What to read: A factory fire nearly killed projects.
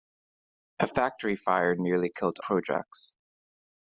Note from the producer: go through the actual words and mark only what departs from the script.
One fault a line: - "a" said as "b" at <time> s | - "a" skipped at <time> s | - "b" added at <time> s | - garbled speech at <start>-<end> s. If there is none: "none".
none